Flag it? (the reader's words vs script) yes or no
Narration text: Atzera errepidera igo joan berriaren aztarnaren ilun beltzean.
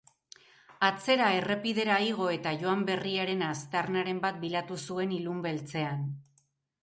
yes